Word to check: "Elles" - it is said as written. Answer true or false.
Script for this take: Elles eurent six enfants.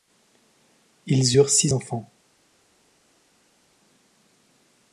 false